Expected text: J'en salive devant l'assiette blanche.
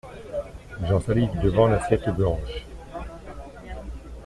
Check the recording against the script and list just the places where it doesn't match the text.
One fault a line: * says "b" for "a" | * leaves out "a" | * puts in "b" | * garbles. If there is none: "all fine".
all fine